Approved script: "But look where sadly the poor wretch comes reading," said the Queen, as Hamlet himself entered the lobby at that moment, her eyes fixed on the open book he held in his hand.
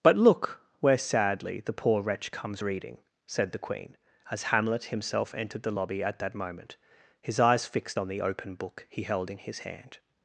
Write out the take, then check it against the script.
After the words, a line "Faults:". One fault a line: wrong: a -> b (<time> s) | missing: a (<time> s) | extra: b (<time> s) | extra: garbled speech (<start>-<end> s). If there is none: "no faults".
"But look where sadly the poor wretch comes reading," said the Queen, as Hamlet himself entered the lobby at that moment, his eyes fixed on the open book he held in his hand.
Faults:
wrong: her -> his (7.2 s)